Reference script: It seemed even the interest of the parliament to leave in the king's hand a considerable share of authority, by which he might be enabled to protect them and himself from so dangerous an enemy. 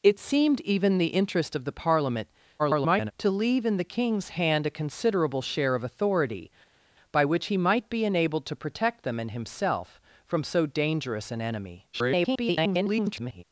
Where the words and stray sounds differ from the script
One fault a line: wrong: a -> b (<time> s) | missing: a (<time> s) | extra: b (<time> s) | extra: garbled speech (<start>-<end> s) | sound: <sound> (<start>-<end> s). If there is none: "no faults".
extra: garbled speech (2.6-3.1 s)
extra: garbled speech (11.9-13.4 s)